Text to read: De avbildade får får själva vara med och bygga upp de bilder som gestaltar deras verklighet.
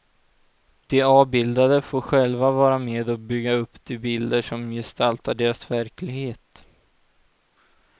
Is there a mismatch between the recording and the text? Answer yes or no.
yes